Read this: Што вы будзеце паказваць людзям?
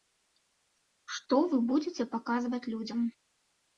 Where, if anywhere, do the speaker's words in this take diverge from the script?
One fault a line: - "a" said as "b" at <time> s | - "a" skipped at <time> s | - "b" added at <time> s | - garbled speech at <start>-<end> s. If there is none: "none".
none